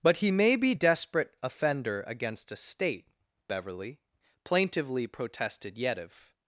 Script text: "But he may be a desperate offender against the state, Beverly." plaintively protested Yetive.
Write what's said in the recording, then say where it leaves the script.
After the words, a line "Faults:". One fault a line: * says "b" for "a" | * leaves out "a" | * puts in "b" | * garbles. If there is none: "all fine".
"But he may be desperate offender against a state, Beverly." plaintively protested Yetive.
Faults:
* leaves out "a"
* says "a" for "the"